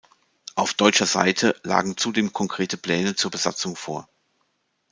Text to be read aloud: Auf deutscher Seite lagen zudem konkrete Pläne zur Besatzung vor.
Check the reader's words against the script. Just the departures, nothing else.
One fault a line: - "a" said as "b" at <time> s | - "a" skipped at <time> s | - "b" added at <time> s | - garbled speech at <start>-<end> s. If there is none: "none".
none